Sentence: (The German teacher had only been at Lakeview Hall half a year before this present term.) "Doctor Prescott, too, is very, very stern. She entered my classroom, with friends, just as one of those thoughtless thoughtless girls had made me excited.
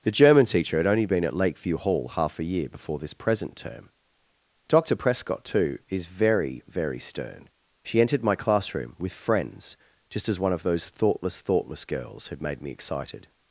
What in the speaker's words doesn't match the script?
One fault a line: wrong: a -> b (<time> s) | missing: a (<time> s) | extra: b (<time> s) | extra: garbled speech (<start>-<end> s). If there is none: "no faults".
no faults